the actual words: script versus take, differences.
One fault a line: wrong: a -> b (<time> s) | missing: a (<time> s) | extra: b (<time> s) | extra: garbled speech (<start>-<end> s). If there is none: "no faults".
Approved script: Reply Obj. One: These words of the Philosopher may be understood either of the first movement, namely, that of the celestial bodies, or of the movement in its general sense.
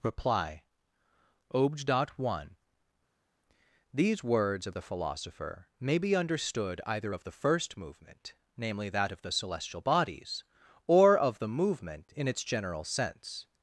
no faults